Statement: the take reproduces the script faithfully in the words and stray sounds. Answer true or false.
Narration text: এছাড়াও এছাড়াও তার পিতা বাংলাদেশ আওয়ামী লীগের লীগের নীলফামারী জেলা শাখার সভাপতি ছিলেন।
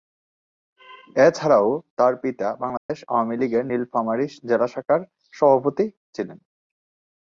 false